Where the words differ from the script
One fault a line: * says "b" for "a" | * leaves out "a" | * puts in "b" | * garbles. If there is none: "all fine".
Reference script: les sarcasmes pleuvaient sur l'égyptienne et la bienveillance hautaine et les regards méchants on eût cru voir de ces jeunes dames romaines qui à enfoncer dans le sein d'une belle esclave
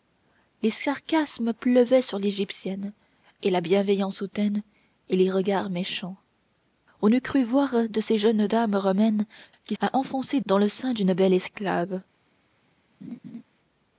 all fine